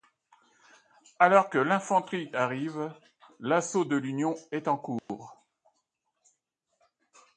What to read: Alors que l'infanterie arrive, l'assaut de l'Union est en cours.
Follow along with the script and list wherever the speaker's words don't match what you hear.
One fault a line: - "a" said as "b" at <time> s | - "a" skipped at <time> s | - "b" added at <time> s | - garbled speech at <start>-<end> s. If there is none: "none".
none